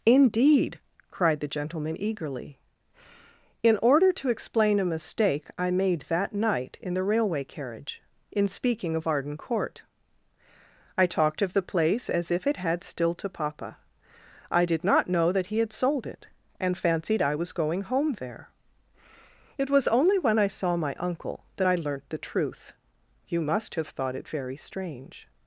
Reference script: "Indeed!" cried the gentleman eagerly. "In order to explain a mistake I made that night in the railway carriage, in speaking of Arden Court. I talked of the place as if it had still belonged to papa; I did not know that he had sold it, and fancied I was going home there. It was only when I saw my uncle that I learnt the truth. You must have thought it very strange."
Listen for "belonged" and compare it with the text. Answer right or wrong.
wrong